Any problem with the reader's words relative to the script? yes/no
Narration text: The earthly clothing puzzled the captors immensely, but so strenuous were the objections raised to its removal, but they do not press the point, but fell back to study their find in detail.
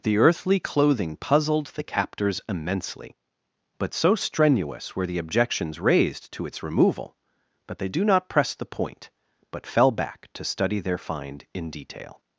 no